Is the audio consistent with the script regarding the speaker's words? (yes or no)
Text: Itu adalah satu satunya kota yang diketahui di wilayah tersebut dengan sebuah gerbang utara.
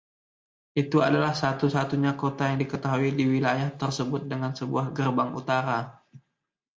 yes